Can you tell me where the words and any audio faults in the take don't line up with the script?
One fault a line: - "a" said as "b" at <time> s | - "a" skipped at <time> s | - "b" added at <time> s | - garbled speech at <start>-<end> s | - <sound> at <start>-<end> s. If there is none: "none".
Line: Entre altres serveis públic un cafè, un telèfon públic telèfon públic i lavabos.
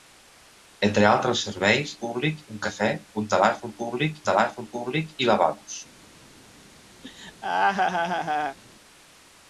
- laugh at 7.0-8.6 s